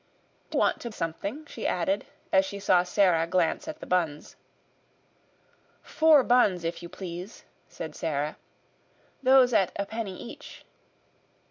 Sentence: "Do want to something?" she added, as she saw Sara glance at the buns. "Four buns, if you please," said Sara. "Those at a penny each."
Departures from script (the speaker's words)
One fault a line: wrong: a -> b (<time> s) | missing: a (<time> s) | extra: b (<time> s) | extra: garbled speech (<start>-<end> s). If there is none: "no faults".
no faults